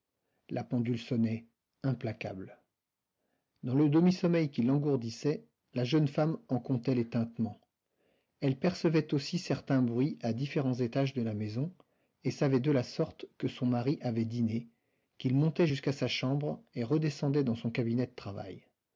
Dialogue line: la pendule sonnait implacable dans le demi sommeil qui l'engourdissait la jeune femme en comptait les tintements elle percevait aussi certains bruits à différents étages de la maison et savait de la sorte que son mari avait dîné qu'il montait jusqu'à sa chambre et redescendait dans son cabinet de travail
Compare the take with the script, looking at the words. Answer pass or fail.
pass